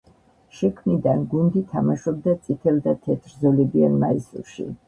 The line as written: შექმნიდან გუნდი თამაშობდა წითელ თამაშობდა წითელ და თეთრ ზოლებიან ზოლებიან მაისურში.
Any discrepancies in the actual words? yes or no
yes